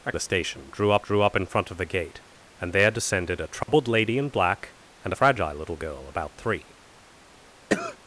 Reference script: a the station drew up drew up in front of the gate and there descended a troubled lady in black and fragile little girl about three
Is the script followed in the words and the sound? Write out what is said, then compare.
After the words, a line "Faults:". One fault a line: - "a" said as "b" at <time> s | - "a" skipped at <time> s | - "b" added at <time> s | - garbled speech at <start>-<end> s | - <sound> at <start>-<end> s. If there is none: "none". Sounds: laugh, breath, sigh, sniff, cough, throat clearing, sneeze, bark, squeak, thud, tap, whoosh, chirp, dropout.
a the station drew up drew up in front of the gate and there descended a troubled lady in black and fragile little girl about three
Faults:
- dropout at 3.6-3.7 s
- cough at 7.7-8.0 s